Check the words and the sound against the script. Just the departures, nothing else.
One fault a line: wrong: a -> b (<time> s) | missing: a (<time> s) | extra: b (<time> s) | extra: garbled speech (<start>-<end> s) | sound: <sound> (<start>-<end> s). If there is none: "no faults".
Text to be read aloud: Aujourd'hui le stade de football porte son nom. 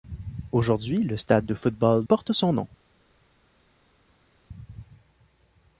no faults